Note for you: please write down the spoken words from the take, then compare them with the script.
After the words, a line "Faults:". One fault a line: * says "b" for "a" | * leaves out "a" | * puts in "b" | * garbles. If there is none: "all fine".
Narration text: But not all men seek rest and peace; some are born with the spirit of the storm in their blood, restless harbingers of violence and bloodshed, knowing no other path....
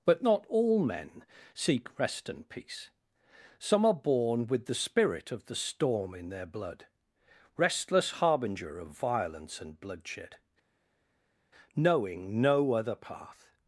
But not all men seek rest and peace; some are born with the spirit of the storm in their blood, restless harbinger of violence and bloodshed, knowing no other path....
Faults:
* says "harbinger" for "harbingers"